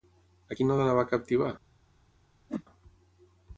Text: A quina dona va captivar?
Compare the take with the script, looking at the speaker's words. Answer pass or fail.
pass